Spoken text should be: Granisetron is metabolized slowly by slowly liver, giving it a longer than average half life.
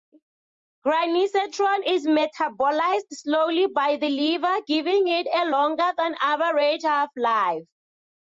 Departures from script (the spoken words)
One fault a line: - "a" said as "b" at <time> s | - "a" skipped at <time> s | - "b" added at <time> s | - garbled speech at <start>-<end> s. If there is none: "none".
- "slowly" said as "the" at 4.0 s